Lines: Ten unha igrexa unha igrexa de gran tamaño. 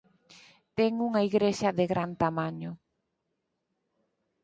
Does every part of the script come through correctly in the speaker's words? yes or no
no